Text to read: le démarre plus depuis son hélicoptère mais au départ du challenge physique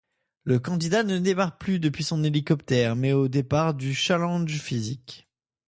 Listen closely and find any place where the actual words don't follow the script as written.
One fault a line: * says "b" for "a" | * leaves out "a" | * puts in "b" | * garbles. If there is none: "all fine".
* puts in "candidat ne"